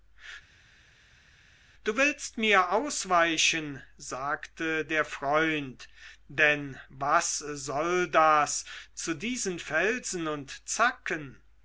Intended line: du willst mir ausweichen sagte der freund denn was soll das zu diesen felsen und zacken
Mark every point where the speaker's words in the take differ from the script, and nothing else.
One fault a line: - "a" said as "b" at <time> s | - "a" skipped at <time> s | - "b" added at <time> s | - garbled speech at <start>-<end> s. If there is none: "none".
none